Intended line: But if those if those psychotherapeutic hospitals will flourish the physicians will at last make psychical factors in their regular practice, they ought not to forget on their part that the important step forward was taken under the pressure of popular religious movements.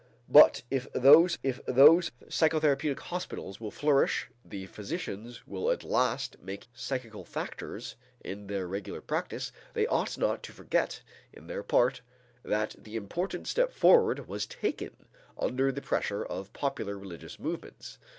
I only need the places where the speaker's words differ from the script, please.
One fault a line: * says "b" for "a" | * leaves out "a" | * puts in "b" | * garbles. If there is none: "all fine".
all fine